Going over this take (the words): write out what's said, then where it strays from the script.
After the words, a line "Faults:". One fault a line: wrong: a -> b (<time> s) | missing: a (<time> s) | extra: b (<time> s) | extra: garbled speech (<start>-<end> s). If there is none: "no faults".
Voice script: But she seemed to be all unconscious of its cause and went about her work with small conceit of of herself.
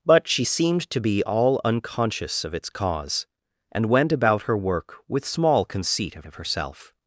But she seemed to be all unconscious of its cause and went about her work with small conceit of of herself.
Faults:
no faults